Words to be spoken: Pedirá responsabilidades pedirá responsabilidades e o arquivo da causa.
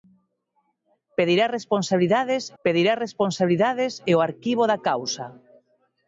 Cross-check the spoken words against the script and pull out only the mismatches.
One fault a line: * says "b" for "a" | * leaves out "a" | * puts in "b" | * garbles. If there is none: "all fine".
all fine